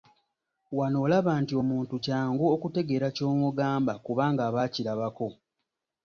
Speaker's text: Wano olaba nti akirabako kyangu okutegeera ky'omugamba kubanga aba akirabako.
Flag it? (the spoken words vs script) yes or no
yes